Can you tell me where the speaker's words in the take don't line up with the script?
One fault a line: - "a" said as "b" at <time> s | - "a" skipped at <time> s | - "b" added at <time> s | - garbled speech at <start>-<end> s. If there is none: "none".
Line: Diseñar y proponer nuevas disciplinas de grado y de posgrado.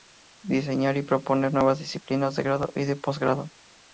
none